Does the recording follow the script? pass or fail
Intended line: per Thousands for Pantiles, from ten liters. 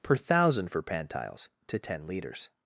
fail